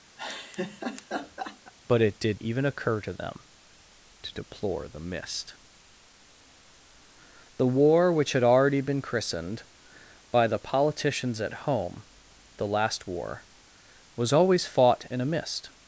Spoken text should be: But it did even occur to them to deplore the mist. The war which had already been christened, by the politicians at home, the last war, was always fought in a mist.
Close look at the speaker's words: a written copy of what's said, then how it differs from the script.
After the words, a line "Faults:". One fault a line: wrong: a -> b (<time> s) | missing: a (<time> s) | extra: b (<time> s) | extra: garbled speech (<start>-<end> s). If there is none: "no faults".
But it did even occur to them to deplore the mist. The war which had already been christened, by the politicians at home, the last war, was always fought in a mist.
Faults:
no faults